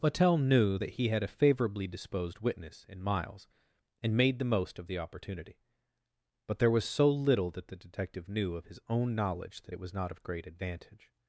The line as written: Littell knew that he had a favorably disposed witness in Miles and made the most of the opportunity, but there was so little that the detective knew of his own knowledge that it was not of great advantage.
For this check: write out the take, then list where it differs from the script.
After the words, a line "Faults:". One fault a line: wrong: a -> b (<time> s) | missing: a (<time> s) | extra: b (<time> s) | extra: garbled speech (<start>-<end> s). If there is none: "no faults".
Littell knew that he had a favorably disposed witness in Miles and made the most of the opportunity, but there was so little that the detective knew of his own knowledge that it was not of great advantage.
Faults:
no faults